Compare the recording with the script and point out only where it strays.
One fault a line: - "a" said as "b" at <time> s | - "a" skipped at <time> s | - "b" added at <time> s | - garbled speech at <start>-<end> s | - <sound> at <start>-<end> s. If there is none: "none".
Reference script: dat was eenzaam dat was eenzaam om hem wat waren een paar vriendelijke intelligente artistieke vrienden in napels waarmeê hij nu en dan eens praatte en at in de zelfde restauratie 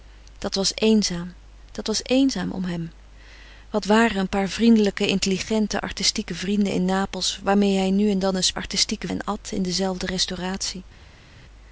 - "praatte" said as "artistieke" at 8.5 s